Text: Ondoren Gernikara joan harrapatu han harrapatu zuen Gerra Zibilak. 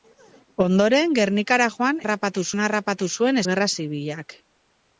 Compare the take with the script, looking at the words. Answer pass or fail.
pass